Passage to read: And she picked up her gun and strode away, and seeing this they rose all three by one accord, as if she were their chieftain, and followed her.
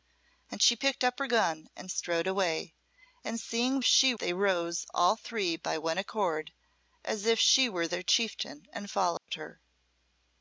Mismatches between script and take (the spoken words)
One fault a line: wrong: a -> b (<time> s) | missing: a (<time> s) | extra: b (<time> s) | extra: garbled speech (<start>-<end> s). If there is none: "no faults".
wrong: this -> she (3.8 s)